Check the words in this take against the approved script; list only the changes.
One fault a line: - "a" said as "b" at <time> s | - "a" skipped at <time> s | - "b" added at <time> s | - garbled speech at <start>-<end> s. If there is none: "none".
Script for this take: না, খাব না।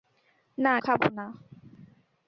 none